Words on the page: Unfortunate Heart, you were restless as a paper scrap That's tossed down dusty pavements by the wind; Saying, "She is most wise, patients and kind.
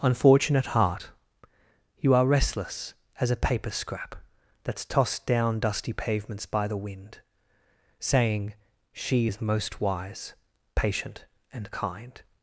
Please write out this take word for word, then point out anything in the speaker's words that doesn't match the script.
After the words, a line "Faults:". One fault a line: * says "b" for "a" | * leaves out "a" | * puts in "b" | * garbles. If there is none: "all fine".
Unfortunate Heart, you are restless as a paper scrap That's tossed down dusty pavements by the wind; Saying, "She is most wise, patient and kind.
Faults:
* says "are" for "were"
* says "patient" for "patients"